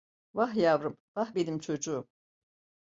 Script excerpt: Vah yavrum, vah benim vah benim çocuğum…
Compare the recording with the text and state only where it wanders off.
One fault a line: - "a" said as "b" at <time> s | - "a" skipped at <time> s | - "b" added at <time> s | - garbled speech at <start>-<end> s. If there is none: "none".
- "vah benim" skipped at 1.6 s